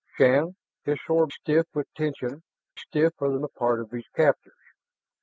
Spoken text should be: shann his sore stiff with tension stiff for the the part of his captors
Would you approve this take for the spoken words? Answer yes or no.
yes